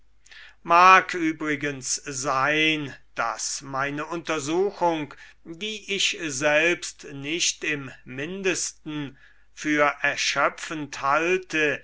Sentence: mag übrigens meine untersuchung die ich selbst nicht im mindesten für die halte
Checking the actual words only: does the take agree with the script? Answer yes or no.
no